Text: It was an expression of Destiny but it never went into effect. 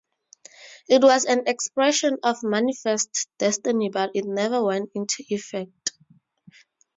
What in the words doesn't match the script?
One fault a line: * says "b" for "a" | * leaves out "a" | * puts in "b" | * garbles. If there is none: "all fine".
* puts in "Manifest"